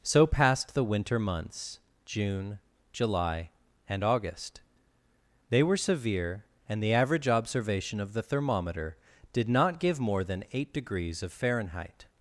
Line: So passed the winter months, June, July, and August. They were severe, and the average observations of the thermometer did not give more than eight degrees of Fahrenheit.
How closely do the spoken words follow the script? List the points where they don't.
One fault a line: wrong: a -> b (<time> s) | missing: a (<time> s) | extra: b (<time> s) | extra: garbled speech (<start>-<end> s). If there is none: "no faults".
wrong: observations -> observation (7.3 s)